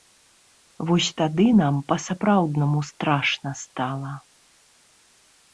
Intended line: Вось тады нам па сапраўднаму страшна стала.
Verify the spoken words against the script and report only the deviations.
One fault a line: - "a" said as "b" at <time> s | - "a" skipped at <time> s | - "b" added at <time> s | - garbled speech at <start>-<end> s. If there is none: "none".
none